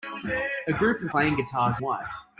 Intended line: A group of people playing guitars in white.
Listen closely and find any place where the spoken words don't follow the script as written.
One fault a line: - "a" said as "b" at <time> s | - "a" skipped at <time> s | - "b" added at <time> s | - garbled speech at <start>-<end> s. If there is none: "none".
- "people" skipped at 1.1 s
- "in" skipped at 1.8 s